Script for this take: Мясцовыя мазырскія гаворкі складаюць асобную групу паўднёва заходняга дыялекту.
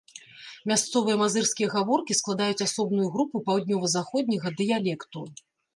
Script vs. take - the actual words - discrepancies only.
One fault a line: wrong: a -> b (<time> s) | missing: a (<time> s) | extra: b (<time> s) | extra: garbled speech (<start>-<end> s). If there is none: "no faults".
no faults